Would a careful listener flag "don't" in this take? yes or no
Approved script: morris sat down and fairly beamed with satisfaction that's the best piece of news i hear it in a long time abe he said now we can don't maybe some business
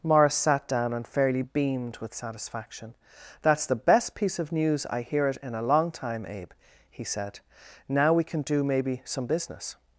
yes